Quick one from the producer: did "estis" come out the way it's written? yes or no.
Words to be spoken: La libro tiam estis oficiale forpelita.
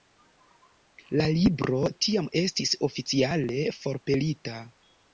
yes